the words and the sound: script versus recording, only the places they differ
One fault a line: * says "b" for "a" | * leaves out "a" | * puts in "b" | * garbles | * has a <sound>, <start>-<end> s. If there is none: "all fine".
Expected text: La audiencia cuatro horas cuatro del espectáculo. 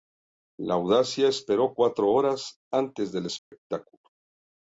* puts in "esperó"
* says "antes" for "cuatro"
* has a dropout, 3.4-3.5 s